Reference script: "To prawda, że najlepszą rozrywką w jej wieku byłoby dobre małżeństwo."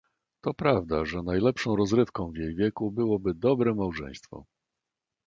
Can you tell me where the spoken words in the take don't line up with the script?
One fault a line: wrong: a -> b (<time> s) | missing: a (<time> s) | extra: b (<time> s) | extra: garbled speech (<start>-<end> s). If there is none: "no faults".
no faults